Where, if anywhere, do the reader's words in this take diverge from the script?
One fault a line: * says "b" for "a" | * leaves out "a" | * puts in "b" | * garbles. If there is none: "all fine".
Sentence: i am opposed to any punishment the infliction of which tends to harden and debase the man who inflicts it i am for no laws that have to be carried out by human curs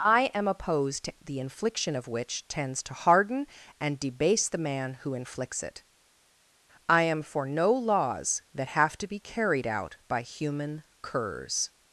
* leaves out "any punishment"